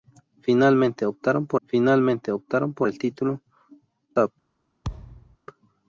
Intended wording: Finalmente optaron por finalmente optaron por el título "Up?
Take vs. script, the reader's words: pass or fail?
pass